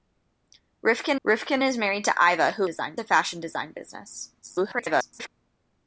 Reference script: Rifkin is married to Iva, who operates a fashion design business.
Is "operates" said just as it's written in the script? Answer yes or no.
no